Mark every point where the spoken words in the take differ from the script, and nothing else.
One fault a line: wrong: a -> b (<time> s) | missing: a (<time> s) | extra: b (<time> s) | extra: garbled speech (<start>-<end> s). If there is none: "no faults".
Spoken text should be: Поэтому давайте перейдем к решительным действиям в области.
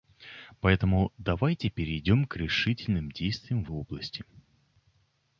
no faults